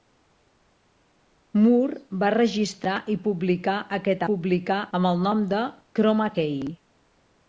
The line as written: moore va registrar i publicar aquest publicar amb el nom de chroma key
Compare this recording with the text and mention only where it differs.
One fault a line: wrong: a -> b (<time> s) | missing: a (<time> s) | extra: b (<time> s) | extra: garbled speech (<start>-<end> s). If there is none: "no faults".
no faults